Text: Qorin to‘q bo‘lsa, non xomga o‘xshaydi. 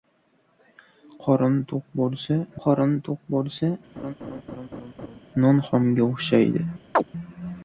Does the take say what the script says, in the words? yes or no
no